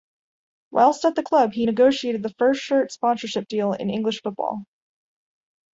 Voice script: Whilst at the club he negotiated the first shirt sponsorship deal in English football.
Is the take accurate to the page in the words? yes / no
yes